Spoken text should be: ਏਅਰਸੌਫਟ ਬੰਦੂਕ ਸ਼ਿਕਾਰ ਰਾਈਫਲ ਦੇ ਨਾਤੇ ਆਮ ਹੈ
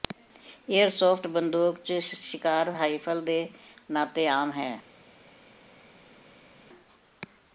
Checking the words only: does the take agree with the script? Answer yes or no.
no